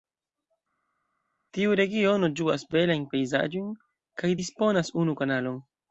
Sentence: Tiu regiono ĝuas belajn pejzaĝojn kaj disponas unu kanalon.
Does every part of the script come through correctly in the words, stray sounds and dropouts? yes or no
yes